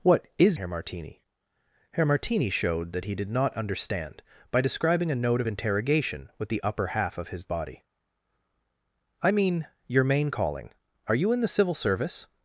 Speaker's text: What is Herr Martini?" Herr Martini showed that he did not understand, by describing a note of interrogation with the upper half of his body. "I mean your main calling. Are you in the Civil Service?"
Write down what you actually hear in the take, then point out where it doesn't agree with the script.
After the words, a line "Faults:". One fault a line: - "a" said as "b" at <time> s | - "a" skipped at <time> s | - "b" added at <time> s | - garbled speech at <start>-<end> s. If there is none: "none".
What is Herr Martini?" Herr Martini showed that he did not understand, by describing a note of interrogation with the upper half of his body. "I mean your main calling. Are you in the Civil Service?"
Faults:
none